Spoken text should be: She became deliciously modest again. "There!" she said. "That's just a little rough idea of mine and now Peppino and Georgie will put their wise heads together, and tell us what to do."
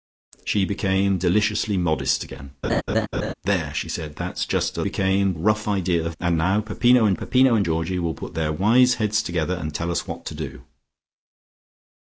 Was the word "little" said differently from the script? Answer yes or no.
yes